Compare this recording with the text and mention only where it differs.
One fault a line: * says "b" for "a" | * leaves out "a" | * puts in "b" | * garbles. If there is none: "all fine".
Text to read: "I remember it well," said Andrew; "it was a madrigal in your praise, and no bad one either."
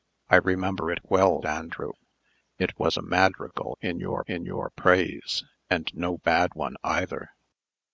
* leaves out "said"
* puts in "in your"